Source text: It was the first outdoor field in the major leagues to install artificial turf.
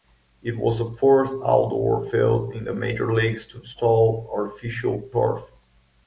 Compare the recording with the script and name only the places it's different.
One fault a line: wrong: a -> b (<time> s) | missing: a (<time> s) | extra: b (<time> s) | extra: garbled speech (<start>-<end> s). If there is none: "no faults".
no faults